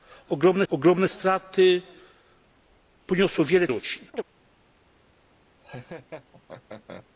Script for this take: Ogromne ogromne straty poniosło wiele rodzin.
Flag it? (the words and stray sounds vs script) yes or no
yes